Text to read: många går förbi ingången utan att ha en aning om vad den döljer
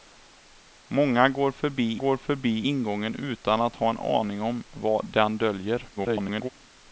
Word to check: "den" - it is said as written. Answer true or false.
true